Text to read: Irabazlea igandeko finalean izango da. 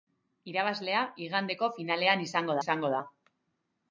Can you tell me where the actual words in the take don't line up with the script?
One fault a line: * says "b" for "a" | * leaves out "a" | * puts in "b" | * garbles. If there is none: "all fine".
* puts in "izango"